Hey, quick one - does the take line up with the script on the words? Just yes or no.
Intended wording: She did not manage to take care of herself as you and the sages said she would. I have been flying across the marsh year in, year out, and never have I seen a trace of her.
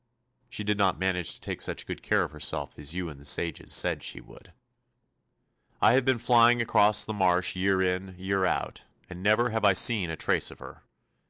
no